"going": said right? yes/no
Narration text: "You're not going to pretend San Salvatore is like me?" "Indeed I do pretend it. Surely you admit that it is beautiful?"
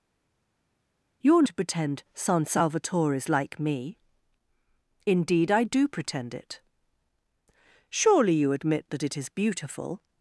no